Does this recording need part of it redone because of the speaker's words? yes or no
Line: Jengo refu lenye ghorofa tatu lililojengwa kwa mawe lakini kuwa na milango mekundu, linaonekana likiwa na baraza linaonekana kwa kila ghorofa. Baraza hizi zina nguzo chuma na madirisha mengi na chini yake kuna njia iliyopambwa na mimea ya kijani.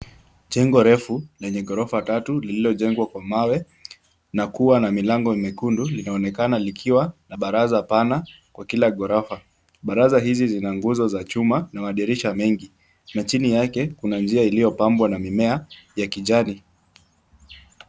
yes